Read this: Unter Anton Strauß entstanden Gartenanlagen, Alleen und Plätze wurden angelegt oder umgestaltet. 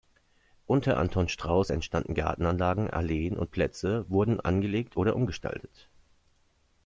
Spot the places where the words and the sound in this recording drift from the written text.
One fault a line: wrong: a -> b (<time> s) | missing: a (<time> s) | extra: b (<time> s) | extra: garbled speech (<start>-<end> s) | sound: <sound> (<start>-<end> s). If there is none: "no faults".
no faults